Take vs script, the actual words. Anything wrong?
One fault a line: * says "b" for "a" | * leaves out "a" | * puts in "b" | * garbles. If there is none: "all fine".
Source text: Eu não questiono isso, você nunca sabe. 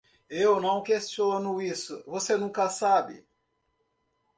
all fine